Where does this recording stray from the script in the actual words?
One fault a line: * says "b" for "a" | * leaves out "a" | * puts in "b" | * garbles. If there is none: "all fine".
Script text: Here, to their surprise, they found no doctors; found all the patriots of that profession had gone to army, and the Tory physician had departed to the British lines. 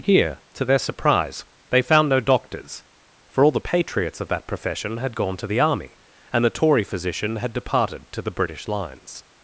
* says "for" for "found"
* puts in "the"